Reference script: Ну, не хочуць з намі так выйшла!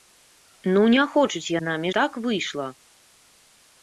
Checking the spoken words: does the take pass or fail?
pass